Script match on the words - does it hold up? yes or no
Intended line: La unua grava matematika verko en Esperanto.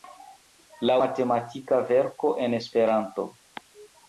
no